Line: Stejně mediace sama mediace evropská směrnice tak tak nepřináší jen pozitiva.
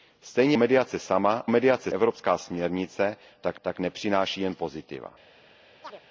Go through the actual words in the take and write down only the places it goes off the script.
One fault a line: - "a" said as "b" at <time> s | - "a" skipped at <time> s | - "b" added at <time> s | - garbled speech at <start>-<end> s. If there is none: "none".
none